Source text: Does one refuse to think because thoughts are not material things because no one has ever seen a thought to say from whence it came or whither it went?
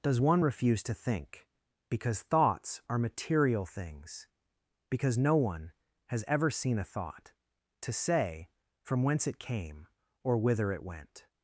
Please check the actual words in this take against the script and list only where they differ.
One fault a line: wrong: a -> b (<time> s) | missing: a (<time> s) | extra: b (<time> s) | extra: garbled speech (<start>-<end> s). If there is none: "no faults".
missing: not (3.0 s)